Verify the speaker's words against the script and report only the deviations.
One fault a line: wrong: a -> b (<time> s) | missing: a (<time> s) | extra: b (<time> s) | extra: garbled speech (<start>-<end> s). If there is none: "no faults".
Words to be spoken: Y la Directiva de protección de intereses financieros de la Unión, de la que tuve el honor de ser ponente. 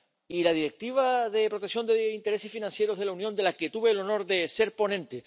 no faults